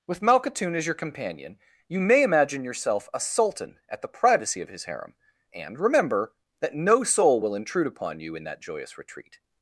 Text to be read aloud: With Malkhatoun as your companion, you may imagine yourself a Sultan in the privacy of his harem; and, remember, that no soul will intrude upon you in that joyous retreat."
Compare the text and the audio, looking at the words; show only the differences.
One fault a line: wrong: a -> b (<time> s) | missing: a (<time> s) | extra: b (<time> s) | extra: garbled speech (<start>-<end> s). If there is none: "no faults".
wrong: in -> at (3.9 s)